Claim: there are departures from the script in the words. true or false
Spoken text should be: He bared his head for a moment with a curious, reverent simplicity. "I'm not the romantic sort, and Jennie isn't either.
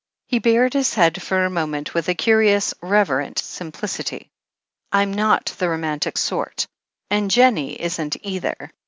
false